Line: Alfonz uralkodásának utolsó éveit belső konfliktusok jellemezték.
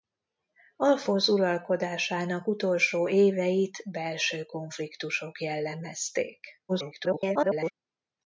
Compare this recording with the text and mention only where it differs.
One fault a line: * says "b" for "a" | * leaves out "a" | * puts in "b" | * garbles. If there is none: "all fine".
* garbles